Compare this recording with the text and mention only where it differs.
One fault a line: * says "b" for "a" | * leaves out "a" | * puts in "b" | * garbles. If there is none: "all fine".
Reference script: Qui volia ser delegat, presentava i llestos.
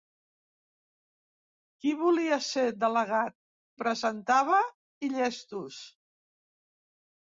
all fine